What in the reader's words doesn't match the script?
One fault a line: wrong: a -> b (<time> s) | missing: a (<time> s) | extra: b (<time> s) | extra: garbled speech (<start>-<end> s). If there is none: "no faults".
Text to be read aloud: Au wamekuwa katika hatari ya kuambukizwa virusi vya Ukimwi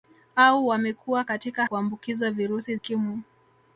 missing: hatari ya (1.6 s)
missing: vya (2.8 s)